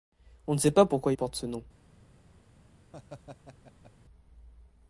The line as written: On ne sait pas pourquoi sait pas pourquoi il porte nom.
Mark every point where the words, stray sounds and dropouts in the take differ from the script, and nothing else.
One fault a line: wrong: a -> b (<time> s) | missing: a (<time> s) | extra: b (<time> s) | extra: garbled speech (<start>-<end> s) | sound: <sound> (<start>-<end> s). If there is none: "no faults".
missing: sait pas pourquoi (1.1 s)
extra: ce (1.3 s)
sound: laugh (2.9-3.9 s)